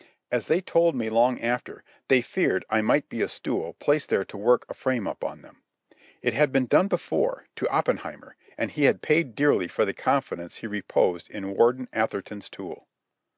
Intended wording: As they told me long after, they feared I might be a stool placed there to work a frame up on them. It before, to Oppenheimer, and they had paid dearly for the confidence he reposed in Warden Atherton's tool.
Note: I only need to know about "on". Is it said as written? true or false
true